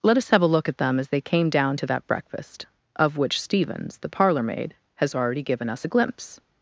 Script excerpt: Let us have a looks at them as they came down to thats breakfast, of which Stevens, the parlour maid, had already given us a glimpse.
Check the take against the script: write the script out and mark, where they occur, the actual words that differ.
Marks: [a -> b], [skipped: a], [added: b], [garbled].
Let us have a [looks -> look] at them as they came down to [thats -> that] breakfast, of which Stevens, the parlour maid, [had -> has] already given us a glimpse.